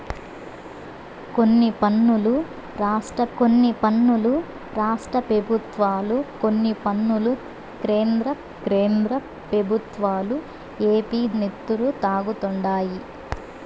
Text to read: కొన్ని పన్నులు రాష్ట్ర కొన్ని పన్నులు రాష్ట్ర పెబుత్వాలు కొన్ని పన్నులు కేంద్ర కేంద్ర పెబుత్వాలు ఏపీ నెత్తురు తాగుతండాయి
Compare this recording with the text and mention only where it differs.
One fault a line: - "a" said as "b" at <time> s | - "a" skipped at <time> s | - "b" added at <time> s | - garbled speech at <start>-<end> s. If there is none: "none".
none